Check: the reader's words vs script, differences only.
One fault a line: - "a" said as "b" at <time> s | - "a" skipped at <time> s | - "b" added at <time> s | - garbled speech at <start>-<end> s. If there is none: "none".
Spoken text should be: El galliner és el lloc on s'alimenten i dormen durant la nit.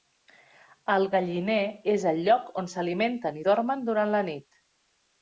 none